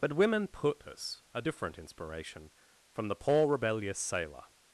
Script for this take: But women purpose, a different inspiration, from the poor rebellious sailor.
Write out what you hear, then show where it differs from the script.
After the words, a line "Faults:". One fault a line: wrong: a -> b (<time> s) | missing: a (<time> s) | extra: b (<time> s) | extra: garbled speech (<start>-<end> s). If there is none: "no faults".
But women purpose, a different inspiration, from the poor rebellious sailor.
Faults:
no faults